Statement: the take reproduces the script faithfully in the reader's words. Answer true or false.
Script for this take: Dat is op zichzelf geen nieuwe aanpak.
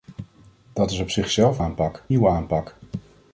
false